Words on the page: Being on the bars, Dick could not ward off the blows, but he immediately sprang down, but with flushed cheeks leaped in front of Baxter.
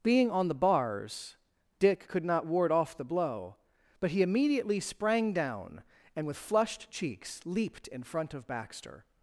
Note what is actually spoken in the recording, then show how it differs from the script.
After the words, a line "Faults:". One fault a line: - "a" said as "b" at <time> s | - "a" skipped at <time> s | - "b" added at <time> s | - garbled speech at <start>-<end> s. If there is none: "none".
Being on the bars, Dick could not ward off the blow, but he immediately sprang down, and with flushed cheeks leaped in front of Baxter.
Faults:
- "blows" said as "blow" at 3.0 s
- "but" said as "and" at 6.1 s